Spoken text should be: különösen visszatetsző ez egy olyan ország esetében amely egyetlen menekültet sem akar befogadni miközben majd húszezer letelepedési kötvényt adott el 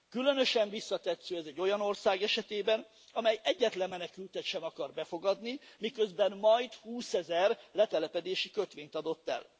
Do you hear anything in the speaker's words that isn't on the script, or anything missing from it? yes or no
no